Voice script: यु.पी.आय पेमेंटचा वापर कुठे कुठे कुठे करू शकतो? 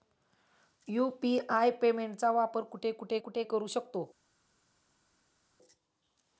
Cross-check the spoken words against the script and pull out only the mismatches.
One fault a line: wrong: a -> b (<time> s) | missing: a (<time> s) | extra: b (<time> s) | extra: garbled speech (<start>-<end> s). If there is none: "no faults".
no faults